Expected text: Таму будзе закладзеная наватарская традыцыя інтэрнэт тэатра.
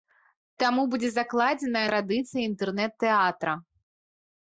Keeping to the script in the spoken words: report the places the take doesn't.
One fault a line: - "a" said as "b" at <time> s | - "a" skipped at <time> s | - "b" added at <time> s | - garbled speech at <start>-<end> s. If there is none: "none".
- "наватарская" skipped at 1.8 s